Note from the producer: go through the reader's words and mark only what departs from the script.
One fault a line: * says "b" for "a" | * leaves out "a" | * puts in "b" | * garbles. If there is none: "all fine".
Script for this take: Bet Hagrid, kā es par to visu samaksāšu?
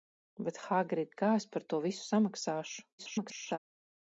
* garbles